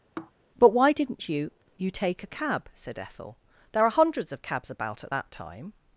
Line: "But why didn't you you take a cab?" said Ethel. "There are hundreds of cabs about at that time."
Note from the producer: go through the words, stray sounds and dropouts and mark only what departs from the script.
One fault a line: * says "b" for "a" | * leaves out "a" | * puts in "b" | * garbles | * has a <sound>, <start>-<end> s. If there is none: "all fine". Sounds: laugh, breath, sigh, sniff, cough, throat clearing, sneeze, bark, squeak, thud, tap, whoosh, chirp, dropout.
* has a sigh, 0.2-0.3 s